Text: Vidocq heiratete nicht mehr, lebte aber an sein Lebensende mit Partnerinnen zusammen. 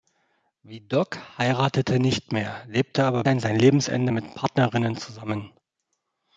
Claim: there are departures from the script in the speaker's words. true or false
false